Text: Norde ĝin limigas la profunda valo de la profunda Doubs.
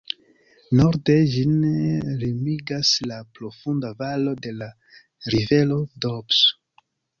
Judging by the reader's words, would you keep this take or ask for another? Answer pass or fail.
fail